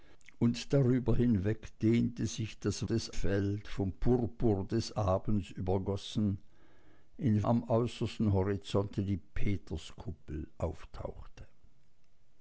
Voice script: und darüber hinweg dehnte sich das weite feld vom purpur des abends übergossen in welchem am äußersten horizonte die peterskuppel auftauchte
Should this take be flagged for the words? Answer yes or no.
yes